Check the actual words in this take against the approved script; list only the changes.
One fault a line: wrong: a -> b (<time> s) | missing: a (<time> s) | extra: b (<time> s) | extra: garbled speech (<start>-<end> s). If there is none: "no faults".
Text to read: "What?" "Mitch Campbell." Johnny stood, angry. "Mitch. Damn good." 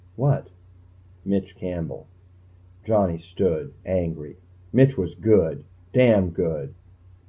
extra: was good (5.0 s)